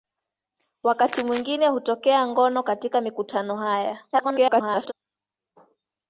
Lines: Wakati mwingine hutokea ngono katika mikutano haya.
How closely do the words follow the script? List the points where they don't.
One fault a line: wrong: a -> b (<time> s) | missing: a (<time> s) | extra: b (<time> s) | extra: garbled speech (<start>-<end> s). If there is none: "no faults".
extra: garbled speech (4.1-4.9 s)